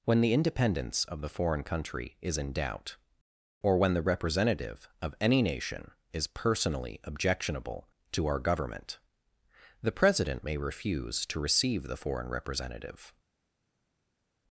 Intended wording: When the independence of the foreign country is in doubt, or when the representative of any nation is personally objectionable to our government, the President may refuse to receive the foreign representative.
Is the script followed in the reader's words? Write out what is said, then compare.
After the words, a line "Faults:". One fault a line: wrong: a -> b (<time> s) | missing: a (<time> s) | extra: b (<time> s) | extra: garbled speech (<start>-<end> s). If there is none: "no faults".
When the independence of the foreign country is in doubt, or when the representative of any nation is personally objectionable to our government, the President may refuse to receive the foreign representative.
Faults:
no faults